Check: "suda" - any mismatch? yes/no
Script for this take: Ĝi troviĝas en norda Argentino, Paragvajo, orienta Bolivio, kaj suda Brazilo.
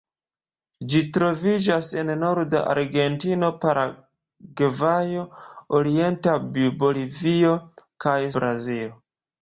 yes